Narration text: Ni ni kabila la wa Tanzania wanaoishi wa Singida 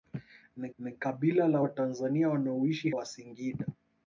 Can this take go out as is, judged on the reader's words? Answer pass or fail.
pass